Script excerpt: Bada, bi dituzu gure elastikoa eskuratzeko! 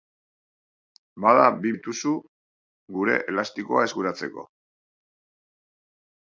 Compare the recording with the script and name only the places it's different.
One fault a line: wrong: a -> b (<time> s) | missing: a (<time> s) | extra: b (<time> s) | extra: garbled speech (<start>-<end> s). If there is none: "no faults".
no faults